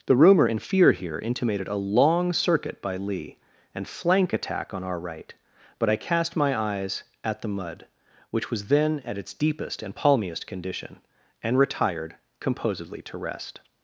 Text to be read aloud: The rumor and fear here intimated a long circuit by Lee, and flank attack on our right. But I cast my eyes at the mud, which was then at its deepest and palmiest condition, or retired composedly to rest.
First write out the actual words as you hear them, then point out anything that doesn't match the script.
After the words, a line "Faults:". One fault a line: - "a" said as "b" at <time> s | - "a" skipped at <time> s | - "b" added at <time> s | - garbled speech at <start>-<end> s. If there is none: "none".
The rumor and fear here intimated a long circuit by Lee, and flank attack on our right. But I cast my eyes at the mud, which was then at its deepest and palmiest condition, and retired composedly to rest.
Faults:
- "or" said as "and" at 11.4 s